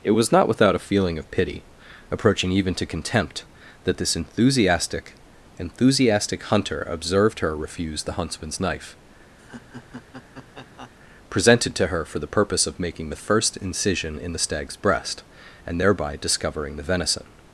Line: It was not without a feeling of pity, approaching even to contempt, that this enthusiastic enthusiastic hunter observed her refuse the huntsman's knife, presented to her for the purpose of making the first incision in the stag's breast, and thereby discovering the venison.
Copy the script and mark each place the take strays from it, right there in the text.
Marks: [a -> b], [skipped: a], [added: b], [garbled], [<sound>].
It was not without a feeling of pity, approaching even to contempt, that this enthusiastic enthusiastic hunter observed her refuse the huntsman's knife, [laugh] presented to her for the purpose of making the first incision in the stag's breast, and thereby discovering the venison.